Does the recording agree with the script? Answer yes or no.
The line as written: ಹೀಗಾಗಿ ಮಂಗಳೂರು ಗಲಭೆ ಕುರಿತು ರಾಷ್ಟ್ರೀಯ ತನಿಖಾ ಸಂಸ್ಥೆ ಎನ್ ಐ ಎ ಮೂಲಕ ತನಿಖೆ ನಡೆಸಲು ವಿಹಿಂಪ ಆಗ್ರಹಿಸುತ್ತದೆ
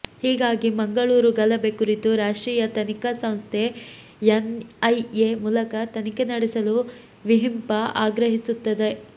yes